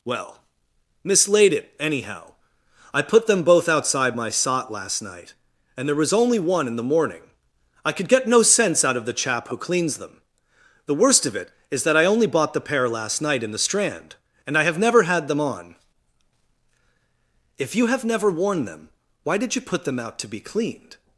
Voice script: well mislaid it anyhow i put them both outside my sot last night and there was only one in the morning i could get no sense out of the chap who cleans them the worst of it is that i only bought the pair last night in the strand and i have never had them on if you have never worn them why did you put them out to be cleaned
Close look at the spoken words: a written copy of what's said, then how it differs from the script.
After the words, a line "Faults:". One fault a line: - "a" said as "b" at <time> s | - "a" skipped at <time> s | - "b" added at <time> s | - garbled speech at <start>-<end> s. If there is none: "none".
well mislaid it anyhow i put them both outside my sot last night and there was only one in the morning i could get no sense out of the chap who cleans them the worst of it is that i only bought the pair last night in the strand and i have never had them on if you have never worn them why did you put them out to be cleaned
Faults:
none